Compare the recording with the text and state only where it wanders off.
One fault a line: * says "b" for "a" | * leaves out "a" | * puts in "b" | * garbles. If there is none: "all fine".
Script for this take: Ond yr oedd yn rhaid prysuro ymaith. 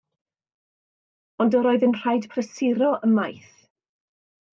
all fine